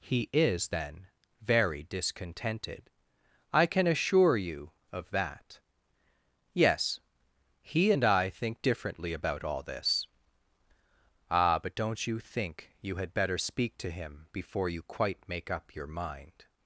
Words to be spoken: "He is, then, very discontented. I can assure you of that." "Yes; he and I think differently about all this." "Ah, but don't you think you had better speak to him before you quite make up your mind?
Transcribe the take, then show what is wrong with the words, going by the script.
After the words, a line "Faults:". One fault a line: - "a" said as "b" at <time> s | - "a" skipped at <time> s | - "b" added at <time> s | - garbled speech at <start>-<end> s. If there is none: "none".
"He is, then, very discontented. I can assure you of that." "Yes; he and I think differently about all this." "Ah, but don't you think you had better speak to him before you quite make up your mind?
Faults:
none